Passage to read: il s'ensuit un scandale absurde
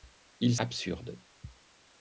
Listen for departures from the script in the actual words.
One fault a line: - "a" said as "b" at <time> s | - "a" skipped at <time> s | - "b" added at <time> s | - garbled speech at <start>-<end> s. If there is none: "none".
- "s'ensuit un scandale" skipped at 0.6 s